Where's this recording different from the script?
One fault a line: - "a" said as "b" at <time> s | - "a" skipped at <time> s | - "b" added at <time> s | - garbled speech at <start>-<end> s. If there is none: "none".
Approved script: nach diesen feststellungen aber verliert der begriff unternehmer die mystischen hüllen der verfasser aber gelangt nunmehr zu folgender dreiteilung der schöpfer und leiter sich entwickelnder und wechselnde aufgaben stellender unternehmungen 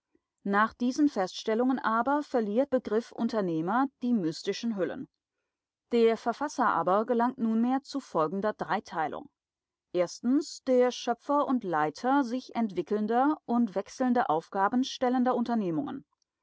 - "der" skipped at 2.8 s